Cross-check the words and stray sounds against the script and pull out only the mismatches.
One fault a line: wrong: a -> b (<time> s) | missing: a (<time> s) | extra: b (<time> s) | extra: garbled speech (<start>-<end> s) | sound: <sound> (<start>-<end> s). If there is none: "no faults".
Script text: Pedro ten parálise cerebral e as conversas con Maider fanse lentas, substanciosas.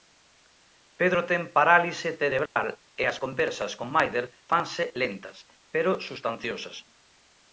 sound: dropout (2.5-2.6 s)
extra: pero (5.7 s)